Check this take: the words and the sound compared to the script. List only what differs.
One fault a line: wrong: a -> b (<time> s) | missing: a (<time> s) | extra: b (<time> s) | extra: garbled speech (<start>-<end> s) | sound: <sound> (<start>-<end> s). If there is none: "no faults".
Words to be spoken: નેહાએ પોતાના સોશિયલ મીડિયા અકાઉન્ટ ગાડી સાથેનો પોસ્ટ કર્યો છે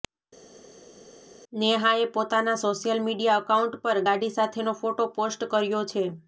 extra: પર (3.8 s)
extra: ફોટો (4.8 s)